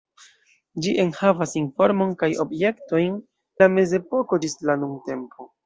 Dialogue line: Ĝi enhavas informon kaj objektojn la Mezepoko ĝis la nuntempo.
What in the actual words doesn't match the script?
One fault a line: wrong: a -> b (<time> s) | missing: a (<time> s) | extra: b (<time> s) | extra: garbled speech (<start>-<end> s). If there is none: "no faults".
no faults